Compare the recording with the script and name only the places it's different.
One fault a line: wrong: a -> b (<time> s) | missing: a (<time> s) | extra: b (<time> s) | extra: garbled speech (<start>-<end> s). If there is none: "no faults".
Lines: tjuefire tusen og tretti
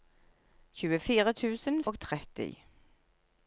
no faults